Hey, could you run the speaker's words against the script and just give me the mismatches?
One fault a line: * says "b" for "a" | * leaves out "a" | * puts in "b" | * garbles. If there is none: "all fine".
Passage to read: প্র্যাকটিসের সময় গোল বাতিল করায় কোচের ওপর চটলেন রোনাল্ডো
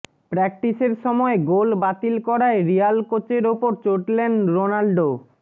* puts in "রিয়াল"